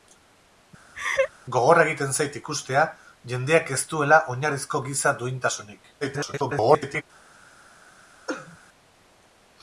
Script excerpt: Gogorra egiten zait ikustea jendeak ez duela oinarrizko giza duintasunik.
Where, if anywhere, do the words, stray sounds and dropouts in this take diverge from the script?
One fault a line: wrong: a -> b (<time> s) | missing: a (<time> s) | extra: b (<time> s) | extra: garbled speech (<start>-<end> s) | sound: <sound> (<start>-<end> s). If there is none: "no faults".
sound: laugh (0.9-1.3 s)
extra: garbled speech (6.0-7.0 s)
sound: cough (8.3-8.6 s)